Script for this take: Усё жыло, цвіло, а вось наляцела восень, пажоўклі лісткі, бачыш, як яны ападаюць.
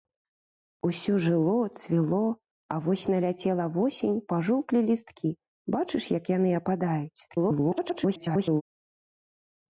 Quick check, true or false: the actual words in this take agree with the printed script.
false